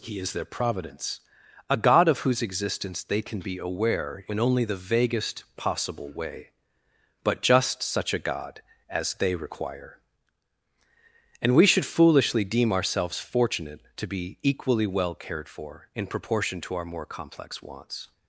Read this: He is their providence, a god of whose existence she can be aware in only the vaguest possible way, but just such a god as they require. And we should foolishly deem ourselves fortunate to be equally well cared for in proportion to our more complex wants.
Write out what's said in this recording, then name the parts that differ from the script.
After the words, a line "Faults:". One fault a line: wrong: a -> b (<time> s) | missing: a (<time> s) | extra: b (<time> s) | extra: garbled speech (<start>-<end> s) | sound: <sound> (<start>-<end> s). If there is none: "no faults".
He is their providence, a god of whose existence they can be aware in only the vaguest possible way, but just such a god as they require. And we should foolishly deem ourselves fortunate to be equally well cared for in proportion to our more complex wants.
Faults:
wrong: she -> they (3.0 s)